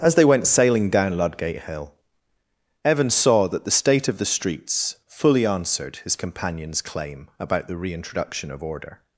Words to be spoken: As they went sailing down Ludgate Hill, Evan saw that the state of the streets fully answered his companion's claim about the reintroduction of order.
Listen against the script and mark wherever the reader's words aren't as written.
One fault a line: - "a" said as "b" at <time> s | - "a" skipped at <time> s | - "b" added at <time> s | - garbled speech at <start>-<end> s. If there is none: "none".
none